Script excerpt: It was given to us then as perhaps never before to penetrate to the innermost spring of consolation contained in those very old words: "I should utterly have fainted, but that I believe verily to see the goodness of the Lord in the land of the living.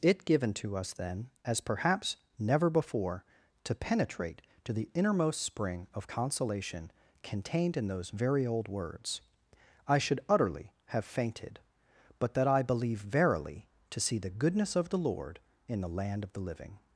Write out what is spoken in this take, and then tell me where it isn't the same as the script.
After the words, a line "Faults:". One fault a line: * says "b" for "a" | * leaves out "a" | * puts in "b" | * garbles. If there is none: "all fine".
It given to us then as perhaps never before to penetrate to the innermost spring of consolation contained in those very old words: "I should utterly have fainted, but that I believe verily to see the goodness of the Lord in the land of the living.
Faults:
* leaves out "was"